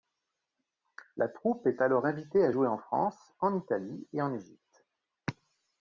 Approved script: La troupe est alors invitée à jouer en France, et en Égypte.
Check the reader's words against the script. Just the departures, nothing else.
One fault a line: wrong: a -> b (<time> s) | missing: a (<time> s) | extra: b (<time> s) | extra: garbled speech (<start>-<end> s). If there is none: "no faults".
extra: en Italie (3.4 s)